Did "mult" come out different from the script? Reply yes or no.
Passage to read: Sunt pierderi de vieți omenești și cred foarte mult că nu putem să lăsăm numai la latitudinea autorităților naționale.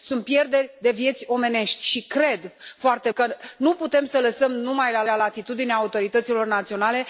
yes